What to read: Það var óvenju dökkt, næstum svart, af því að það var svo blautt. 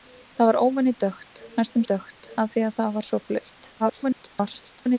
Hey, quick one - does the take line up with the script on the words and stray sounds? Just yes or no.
no